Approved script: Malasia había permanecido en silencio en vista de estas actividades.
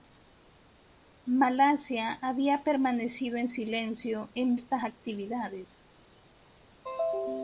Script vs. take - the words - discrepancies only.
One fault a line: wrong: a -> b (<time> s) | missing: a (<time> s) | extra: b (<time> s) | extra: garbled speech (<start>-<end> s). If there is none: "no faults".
missing: vista de (4.6 s)